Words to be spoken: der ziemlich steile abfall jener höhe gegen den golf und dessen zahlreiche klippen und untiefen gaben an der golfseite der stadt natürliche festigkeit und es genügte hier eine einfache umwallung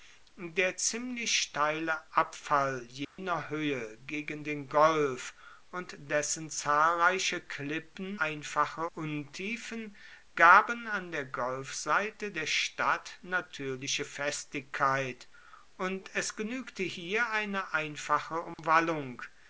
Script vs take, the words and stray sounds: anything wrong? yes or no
yes